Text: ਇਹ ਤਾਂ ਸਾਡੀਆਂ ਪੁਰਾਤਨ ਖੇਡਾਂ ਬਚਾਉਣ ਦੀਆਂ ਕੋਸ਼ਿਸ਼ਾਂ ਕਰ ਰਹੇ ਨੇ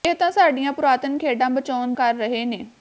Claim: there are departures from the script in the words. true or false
true